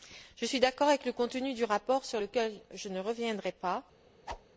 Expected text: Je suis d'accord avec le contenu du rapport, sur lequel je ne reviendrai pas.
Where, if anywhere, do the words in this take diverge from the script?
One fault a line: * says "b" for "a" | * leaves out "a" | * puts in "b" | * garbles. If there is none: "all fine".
all fine